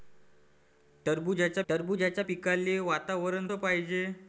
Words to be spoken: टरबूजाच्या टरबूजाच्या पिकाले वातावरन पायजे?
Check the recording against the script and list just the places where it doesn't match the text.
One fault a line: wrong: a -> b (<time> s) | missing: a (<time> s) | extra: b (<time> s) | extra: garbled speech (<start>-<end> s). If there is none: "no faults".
no faults